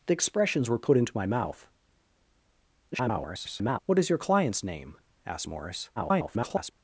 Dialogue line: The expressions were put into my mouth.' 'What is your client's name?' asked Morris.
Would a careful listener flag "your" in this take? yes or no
no